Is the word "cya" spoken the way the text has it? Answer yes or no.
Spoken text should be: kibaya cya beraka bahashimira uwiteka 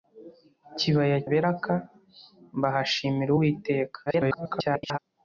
no